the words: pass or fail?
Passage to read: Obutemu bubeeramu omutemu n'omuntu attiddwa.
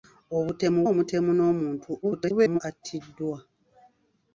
fail